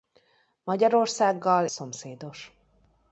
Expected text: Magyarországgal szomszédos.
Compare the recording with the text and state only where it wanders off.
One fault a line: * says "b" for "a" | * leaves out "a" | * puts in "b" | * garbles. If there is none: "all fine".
all fine